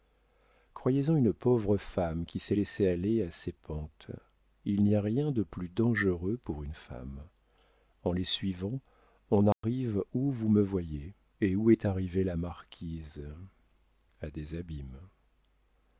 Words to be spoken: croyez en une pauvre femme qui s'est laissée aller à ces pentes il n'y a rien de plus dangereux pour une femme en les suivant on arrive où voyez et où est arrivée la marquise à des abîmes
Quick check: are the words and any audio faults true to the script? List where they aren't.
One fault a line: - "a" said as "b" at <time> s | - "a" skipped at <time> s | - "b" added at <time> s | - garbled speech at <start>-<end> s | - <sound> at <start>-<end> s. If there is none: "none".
- dropout at 9.5-9.6 s
- "vous me" added at 10.3 s